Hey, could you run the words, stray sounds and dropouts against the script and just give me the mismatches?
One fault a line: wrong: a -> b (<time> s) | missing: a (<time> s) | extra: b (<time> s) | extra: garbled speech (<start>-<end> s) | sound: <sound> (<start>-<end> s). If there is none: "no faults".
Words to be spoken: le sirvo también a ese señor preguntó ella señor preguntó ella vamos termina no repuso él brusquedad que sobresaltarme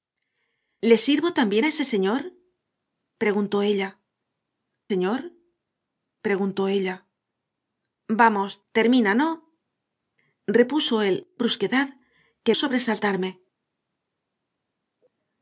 no faults